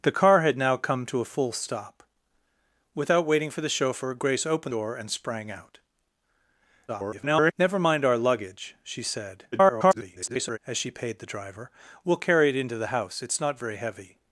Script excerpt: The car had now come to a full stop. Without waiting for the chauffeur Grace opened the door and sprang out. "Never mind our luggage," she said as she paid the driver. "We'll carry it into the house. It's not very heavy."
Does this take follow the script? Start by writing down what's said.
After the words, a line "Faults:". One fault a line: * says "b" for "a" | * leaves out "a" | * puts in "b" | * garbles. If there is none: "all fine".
The car had now come to a full stop. Without waiting for the chauffeur Grace opened door and sprang out. [garbled] "Never mind our luggage," she said [garbled] as she paid the driver. "We'll carry it into the house. It's not very heavy."
Faults:
* leaves out "the"
* garbles
* garbles